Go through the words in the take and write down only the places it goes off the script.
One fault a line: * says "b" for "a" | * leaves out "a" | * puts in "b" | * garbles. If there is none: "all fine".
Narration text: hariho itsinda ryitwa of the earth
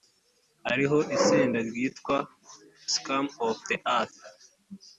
* puts in "scum"